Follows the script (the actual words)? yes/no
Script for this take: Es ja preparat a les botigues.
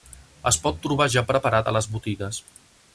no